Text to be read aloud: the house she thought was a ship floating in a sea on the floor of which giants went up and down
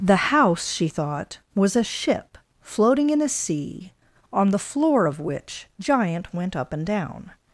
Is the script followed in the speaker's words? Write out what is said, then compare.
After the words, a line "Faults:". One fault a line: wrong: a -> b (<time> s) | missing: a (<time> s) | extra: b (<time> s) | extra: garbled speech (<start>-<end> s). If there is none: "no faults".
the house she thought was a ship floating in a sea on the floor of which giant went up and down
Faults:
wrong: giants -> giant (5.8 s)